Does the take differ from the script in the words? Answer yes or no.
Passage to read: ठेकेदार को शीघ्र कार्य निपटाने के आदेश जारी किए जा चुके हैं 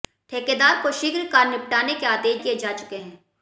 yes